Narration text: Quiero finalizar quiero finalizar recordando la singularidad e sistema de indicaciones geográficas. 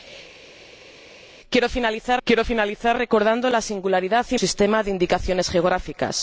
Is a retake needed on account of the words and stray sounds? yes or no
no